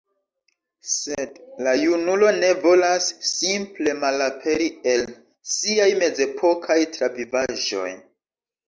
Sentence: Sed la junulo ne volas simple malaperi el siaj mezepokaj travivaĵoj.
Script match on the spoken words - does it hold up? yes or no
yes